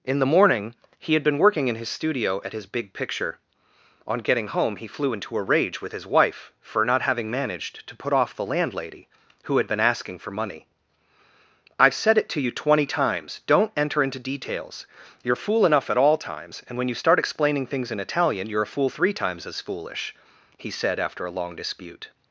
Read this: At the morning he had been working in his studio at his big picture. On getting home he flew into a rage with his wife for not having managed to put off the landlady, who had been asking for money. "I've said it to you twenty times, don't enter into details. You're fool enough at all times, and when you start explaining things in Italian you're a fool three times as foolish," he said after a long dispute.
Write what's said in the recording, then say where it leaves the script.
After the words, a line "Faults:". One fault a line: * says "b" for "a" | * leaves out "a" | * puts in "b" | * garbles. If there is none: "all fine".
In the morning he had been working in his studio at his big picture. On getting home he flew into a rage with his wife for not having managed to put off the landlady, who had been asking for money. "I've said it to you twenty times, don't enter into details. You're fool enough at all times, and when you start explaining things in Italian you're a fool three times as foolish," he said after a long dispute.
Faults:
* says "In" for "At"